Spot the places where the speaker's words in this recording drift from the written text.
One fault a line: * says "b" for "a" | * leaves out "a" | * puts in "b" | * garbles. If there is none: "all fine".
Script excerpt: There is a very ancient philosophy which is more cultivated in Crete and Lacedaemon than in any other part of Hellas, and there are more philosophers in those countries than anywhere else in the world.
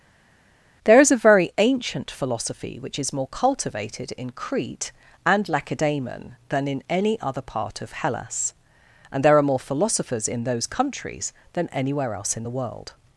all fine